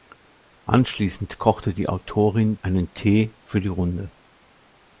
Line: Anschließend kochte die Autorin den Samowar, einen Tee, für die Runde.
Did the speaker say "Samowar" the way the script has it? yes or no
no